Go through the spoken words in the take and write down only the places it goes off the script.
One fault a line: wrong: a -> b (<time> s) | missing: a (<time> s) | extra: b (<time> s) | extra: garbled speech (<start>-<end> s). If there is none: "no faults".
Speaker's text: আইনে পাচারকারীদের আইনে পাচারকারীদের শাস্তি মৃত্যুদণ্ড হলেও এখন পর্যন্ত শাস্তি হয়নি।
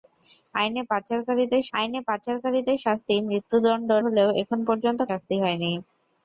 no faults